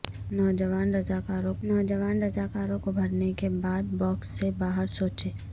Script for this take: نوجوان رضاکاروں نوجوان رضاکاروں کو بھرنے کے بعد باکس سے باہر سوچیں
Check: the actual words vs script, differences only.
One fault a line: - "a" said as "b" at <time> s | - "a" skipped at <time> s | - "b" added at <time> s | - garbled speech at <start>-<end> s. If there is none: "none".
none